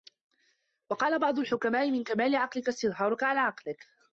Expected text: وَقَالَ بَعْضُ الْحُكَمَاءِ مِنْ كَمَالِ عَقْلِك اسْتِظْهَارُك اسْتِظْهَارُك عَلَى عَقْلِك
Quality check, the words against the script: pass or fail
fail